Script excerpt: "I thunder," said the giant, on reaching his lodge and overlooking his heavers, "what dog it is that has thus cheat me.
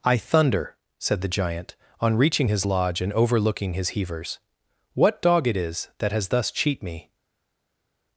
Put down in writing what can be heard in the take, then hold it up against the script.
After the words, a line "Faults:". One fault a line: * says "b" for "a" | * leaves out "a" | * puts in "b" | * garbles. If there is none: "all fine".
"I thunder," said the giant, on reaching his lodge and overlooking his heavers, "what dog it is that has thus cheat me.
Faults:
all fine